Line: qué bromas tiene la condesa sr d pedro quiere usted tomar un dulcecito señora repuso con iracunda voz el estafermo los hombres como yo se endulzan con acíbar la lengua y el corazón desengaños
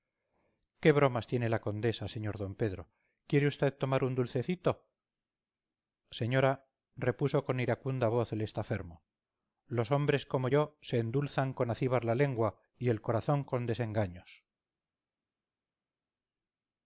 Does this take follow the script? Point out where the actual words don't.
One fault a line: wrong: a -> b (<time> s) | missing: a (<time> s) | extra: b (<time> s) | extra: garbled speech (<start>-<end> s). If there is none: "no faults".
extra: con (13.4 s)